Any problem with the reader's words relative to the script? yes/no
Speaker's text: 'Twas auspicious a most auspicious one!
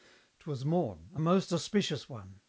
yes